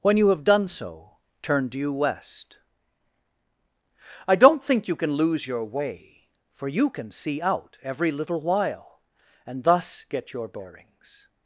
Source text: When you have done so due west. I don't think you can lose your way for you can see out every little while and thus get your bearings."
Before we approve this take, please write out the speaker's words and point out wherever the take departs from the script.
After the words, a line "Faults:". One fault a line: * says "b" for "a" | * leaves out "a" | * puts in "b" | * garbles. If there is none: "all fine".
When you have done so turn due west. I don't think you can lose your way for you can see out every little while and thus get your bearings."
Faults:
* puts in "turn"